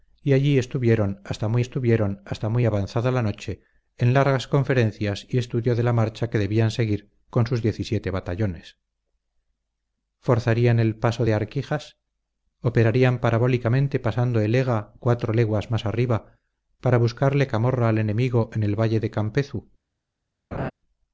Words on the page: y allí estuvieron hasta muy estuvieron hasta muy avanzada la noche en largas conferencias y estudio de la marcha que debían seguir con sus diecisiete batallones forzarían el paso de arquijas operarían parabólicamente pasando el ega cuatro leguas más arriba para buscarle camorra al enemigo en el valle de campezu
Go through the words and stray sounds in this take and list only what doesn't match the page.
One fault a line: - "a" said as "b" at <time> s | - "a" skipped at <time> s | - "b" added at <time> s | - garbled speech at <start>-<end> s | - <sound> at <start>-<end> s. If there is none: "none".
- laugh at 20.5-20.7 s